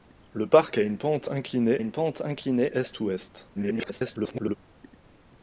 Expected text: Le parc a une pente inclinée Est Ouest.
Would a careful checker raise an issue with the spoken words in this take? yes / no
yes